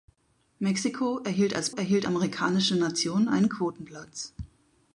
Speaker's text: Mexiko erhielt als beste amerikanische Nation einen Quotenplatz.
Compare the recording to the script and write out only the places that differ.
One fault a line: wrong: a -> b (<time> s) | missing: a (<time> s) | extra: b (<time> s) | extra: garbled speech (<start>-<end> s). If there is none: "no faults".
wrong: beste -> erhielt (1.7 s)